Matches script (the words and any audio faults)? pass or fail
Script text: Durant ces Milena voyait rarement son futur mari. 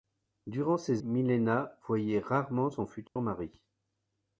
fail